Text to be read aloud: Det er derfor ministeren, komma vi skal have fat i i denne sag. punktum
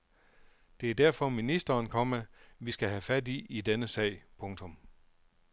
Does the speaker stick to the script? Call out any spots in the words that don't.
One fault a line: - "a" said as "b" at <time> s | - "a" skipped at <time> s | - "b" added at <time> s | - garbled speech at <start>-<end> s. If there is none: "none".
none